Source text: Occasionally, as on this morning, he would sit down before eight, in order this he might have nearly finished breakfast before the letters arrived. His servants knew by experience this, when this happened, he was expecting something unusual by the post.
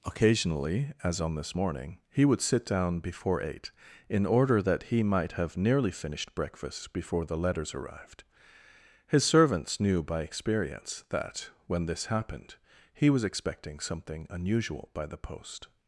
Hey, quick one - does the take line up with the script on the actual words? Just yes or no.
no